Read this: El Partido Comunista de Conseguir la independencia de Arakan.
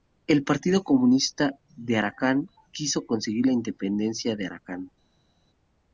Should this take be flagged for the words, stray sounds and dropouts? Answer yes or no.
yes